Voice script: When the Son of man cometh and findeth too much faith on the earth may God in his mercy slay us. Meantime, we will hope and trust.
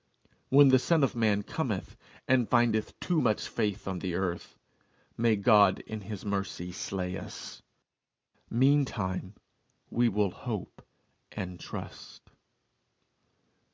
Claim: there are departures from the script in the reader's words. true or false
false